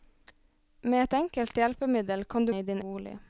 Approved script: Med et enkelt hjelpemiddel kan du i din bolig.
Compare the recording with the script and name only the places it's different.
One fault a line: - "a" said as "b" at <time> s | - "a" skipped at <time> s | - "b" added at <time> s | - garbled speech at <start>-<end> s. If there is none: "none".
none